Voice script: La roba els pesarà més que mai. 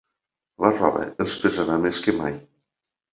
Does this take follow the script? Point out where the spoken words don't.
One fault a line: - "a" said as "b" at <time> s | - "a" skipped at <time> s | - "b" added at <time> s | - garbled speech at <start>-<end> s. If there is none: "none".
none